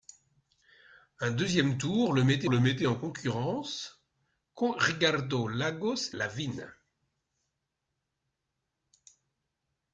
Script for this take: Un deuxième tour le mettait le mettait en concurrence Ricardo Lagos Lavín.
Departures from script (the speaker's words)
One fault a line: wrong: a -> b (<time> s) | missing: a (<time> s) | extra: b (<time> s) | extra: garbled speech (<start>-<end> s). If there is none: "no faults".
no faults